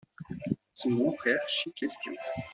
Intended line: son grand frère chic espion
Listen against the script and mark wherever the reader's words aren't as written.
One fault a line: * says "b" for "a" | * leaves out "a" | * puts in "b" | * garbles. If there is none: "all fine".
all fine